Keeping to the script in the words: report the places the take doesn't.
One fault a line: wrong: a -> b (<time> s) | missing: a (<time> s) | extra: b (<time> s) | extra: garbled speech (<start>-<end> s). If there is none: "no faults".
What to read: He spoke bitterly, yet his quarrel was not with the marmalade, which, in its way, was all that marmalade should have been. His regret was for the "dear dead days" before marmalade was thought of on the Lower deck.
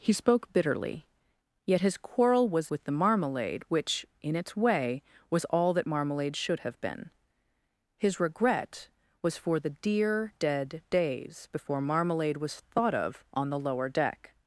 missing: not (2.7 s)